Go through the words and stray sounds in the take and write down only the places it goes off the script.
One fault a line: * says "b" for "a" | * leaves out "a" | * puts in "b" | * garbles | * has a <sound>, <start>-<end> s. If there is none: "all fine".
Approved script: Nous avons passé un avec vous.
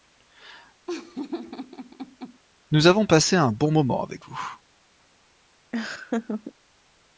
* has a laugh, 0.9-2.4 s
* puts in "bon moment"
* has a laugh, 5.7-6.5 s